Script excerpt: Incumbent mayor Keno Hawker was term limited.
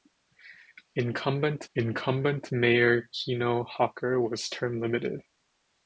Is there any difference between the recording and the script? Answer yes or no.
yes